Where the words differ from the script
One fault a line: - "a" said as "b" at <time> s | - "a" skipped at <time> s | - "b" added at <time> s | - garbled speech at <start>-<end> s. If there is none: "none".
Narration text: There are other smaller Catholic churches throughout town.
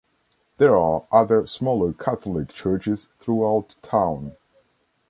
none